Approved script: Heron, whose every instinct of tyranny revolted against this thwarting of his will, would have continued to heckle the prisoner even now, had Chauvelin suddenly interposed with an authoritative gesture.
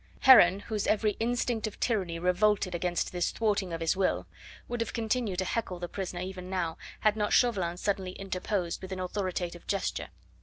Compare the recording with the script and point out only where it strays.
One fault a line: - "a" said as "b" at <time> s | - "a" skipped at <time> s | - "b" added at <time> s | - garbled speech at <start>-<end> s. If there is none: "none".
- "not" added at 7.2 s